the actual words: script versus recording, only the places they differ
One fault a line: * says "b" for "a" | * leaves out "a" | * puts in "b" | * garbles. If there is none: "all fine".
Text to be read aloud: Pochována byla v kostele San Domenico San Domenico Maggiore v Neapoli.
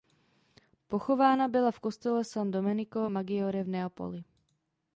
* leaves out "San Domenico"